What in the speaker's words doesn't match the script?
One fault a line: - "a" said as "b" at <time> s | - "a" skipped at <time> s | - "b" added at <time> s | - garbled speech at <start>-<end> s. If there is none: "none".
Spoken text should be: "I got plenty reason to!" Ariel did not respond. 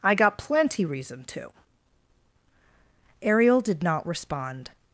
none